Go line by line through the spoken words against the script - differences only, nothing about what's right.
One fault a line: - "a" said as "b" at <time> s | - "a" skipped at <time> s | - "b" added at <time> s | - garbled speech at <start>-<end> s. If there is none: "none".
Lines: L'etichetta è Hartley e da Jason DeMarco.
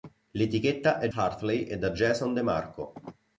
none